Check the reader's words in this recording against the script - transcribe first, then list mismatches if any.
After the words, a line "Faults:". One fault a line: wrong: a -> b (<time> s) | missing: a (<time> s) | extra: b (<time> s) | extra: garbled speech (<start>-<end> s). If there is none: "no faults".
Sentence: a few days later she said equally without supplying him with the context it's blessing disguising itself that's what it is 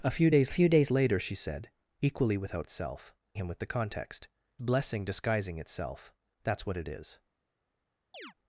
a few days few days later she said equally without itself him with the context blessing disguising itself that's what it is
Faults:
extra: few days (0.5 s)
wrong: supplying -> itself (2.6 s)
missing: it's (4.3 s)